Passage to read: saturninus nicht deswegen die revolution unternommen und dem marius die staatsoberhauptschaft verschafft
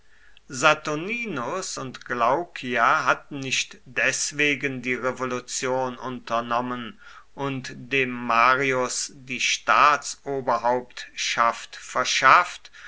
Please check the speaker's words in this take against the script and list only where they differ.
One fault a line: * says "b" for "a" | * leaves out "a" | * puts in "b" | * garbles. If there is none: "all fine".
* puts in "und glaucia hatten"